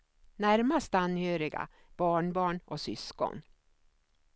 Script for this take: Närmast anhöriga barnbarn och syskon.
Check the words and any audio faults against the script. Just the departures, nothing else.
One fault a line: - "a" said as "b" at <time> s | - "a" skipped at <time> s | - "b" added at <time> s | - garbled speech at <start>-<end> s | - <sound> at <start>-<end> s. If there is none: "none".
none